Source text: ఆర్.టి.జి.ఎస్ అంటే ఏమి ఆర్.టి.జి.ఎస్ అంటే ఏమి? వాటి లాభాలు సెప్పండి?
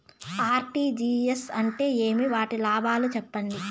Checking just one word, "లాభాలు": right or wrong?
right